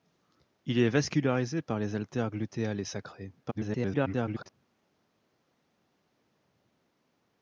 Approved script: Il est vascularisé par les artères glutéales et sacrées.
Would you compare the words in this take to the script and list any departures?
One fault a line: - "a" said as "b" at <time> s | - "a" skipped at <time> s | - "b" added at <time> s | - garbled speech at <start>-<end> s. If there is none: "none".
- garbled speech at 3.4-4.6 s